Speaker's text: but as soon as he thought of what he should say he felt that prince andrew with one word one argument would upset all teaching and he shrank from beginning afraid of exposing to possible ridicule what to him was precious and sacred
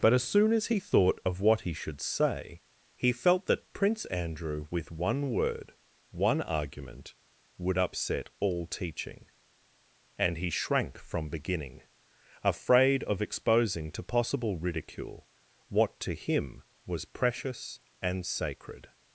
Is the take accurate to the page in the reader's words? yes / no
yes